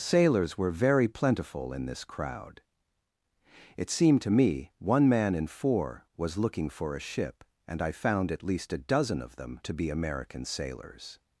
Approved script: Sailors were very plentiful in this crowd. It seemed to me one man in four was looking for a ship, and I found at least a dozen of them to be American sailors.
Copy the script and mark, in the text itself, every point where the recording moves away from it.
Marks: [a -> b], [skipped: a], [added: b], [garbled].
Sailors were very plentiful in this crowd. It seemed to me one man in four was looking for a ship, and I found at least a dozen of them to be American sailors.